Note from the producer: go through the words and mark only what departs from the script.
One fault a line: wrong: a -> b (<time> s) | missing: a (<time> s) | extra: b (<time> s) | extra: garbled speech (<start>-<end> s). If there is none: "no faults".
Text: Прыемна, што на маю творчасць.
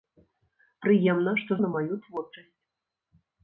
no faults